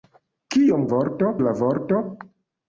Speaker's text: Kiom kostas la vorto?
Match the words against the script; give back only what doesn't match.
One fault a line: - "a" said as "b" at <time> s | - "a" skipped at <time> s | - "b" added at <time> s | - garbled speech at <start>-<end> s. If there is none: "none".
- "kostas" said as "vorto" at 0.9 s